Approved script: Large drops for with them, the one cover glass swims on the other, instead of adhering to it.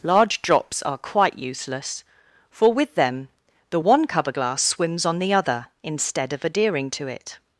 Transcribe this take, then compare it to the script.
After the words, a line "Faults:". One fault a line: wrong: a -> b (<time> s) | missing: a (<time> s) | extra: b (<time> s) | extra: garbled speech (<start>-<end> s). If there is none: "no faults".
Large drops are quite useless, for with them, the one cover glass swims on the other, instead of adhering to it.
Faults:
extra: are quite useless (0.8 s)